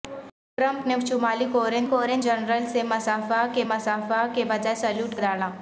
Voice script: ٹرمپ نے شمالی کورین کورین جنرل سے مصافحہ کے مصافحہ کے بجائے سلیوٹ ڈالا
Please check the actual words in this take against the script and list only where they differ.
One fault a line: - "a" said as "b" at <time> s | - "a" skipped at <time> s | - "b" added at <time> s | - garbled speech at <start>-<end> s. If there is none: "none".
none